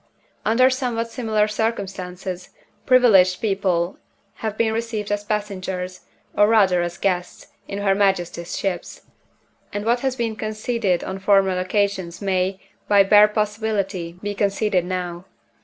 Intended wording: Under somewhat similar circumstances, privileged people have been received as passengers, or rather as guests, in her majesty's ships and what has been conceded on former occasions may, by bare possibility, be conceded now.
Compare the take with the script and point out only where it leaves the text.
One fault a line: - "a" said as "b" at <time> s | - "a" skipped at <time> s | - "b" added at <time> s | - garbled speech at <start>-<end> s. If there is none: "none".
none